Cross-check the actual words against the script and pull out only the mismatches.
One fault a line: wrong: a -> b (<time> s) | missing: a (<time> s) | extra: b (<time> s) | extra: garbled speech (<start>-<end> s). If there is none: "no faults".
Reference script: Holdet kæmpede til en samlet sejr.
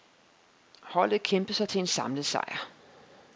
extra: sig (1.5 s)